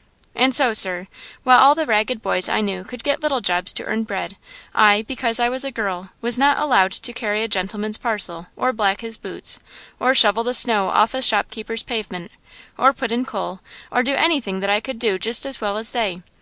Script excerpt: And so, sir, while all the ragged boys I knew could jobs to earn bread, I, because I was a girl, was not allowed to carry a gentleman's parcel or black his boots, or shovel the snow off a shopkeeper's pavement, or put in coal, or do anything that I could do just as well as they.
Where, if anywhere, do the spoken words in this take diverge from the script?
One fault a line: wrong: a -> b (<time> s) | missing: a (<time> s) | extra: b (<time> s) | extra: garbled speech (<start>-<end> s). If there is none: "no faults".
extra: get little (3.0 s)